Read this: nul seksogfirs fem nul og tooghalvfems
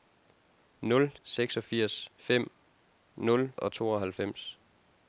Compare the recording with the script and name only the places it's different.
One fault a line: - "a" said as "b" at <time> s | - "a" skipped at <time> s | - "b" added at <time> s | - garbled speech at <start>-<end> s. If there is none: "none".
none